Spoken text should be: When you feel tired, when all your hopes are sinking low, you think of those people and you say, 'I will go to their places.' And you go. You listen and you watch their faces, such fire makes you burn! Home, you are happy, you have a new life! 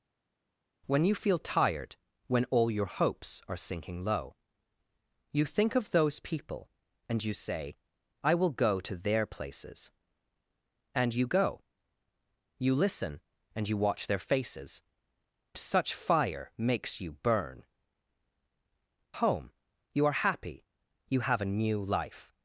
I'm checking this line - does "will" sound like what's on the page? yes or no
yes